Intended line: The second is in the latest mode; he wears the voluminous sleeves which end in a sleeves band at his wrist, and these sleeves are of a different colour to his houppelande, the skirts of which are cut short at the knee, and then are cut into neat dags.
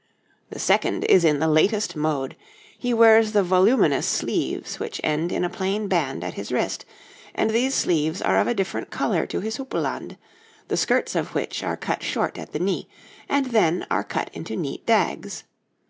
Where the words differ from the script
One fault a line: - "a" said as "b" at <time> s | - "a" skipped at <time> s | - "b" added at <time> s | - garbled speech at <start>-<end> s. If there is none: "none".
- "sleeves" said as "plain" at 5.5 s